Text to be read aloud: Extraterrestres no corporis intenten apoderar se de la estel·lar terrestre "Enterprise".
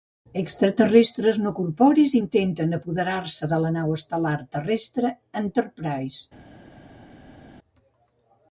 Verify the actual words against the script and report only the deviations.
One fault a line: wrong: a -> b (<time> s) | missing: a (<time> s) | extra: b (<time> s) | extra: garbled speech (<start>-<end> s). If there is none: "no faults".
extra: nau (3.8 s)